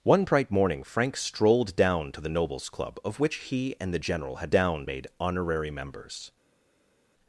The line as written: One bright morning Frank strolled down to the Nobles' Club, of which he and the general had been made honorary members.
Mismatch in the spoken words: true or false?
true